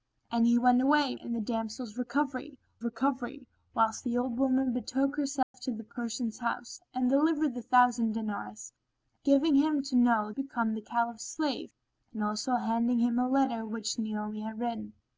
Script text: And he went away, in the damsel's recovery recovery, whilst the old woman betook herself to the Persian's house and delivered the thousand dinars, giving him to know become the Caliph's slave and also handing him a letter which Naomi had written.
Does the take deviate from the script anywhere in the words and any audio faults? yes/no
yes